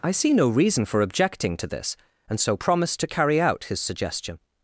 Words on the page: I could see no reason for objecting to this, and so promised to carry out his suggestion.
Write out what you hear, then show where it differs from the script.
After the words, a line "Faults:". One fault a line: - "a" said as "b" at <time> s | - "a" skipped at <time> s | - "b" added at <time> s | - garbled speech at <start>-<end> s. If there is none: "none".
I see no reason for objecting to this, and so promised to carry out his suggestion.
Faults:
- "could" skipped at 0.1 s